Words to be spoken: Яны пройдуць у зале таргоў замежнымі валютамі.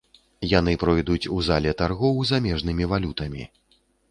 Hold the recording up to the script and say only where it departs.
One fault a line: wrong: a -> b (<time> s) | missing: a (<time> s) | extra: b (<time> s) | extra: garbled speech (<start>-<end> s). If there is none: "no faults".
no faults